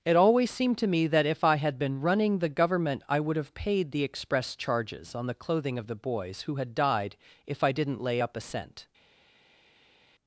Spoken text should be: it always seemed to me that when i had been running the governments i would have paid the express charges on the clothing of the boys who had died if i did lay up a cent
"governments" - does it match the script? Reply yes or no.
no